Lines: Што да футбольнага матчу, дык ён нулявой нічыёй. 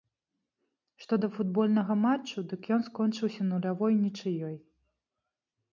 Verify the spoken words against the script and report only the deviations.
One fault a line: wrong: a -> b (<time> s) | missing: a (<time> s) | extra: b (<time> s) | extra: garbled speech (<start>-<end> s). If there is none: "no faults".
extra: скончыўся (2.9 s)